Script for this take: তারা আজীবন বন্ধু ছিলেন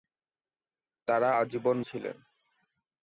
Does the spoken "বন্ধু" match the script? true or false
false